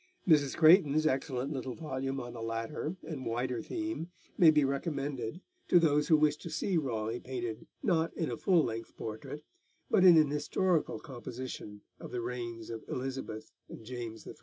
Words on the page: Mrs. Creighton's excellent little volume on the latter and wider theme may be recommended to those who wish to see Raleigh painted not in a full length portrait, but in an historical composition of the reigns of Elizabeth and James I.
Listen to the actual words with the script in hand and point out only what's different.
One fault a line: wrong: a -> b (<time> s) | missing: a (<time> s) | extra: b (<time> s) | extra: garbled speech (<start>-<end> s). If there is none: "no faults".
no faults